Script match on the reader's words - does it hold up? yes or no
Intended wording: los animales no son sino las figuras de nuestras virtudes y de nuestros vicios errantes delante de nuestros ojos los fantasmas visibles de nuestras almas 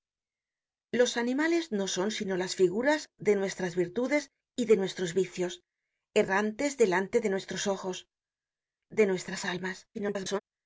no